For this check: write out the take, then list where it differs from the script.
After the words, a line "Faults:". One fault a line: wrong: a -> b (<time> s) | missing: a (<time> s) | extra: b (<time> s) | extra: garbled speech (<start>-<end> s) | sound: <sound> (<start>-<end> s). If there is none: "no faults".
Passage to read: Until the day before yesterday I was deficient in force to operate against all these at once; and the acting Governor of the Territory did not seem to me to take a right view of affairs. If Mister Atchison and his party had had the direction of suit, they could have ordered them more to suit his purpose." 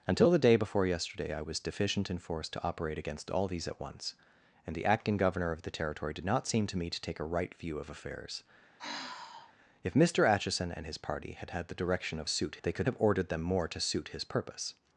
Until the day before yesterday I was deficient in force to operate against all these at once; and the acting Governor of the Territory did not seem to me to take a right view of affairs. If Mister Atchison and his party had had the direction of suit, they could have ordered them more to suit his purpose."
Faults:
sound: sigh (8.8-9.5 s)